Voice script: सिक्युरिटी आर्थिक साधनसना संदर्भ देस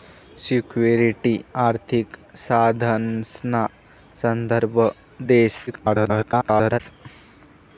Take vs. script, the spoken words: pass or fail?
fail